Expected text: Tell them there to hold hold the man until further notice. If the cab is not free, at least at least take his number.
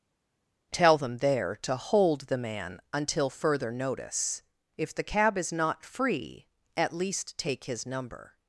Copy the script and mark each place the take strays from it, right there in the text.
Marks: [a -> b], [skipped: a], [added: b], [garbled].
Tell them there to hold [skipped: hold] the man until further notice. If the cab is not free, at least [skipped: at least] take his number.